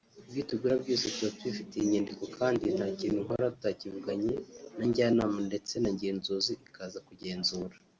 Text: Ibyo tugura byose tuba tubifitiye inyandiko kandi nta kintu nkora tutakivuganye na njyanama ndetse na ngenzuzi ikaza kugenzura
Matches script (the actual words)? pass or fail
pass